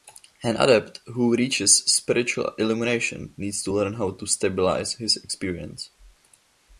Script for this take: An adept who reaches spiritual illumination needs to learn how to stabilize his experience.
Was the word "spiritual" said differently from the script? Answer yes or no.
no